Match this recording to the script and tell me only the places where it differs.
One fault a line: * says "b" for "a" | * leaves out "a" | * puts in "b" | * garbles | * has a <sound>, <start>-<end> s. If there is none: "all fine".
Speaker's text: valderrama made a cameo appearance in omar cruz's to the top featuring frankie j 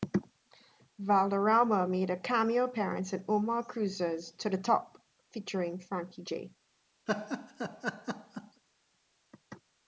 * has a laugh, 7.1-8.6 s